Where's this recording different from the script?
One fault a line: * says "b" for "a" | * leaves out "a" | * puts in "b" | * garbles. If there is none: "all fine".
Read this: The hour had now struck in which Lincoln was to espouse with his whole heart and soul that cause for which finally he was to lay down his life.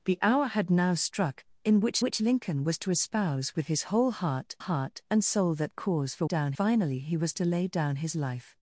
* puts in "which"
* puts in "heart"
* says "down" for "which"